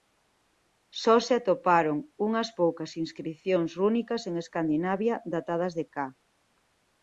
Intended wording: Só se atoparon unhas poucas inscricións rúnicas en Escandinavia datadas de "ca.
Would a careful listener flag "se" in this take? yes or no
no